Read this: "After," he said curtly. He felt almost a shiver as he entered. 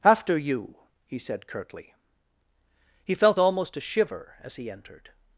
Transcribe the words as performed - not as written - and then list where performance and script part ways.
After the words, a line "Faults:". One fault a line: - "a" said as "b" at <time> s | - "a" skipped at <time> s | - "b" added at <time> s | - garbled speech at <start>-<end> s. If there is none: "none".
"After you," he said curtly. He felt almost a shiver as he entered.
Faults:
- "you" added at 0.4 s